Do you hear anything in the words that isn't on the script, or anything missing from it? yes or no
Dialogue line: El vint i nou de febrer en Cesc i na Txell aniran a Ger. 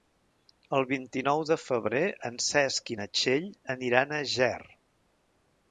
no